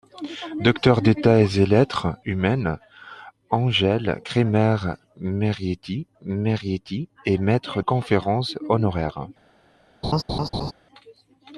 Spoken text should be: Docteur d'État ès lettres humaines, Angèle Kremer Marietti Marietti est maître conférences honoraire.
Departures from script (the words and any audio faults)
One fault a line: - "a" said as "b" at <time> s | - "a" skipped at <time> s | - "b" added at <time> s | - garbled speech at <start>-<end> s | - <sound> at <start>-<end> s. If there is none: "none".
- laugh at 10.0-10.7 s